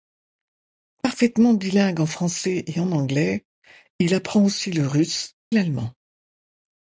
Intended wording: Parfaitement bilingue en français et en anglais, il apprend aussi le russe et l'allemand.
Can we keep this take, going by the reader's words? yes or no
no